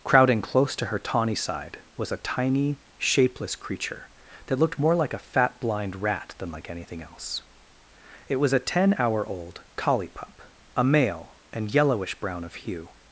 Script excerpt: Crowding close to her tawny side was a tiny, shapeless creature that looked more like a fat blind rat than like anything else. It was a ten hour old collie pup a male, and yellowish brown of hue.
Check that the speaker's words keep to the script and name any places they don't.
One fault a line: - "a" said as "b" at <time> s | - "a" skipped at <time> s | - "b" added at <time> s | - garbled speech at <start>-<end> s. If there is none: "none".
none